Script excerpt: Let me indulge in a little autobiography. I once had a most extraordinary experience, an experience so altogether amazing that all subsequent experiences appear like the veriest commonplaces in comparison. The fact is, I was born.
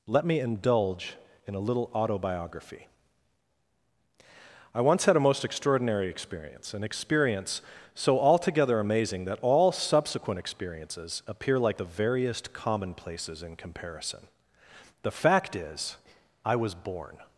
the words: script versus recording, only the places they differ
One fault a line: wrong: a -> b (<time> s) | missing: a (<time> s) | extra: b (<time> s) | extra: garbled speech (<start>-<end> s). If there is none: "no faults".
no faults